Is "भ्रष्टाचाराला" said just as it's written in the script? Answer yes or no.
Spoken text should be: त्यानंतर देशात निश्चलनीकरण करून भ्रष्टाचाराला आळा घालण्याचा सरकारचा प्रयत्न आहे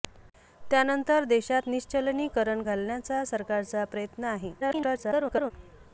no